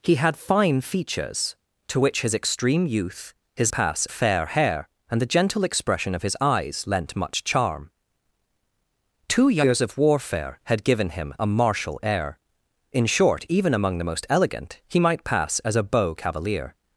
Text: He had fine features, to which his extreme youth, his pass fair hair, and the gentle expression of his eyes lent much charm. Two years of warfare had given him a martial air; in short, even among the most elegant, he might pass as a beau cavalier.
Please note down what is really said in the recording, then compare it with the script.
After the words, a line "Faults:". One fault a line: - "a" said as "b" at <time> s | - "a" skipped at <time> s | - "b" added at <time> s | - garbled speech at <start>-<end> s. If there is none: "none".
He had fine features, to which his extreme youth, his pass fair hair, and the gentle expression of his eyes lent much charm. Two years of warfare had given him a martial air; in short, even among the most elegant, he might pass as a beau cavalier.
Faults:
none